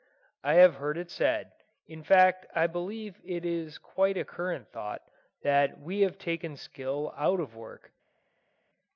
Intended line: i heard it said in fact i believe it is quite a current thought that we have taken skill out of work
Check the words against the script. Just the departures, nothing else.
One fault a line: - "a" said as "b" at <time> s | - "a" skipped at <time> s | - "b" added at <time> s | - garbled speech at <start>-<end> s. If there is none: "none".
- "have" added at 0.6 s